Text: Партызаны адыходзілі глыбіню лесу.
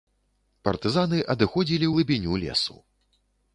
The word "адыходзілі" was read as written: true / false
true